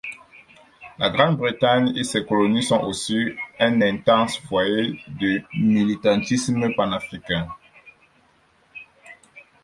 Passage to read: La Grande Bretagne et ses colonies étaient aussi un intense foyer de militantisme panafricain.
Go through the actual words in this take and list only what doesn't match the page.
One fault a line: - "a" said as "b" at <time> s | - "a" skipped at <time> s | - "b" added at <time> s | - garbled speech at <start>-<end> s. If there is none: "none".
- "étaient" said as "sont" at 2.6 s